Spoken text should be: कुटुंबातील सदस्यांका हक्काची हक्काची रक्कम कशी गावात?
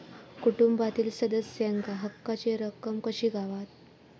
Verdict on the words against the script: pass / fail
fail